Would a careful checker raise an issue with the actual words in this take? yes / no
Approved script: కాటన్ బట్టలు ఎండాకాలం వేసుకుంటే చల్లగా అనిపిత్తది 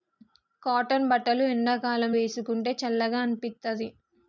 no